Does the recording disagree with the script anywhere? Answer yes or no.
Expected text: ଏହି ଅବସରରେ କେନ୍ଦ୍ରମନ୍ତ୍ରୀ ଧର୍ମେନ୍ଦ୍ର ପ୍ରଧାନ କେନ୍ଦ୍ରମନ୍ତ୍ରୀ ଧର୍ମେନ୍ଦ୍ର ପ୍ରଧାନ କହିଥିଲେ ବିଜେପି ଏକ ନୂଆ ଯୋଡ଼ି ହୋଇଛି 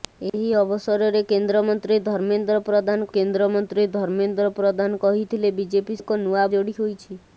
no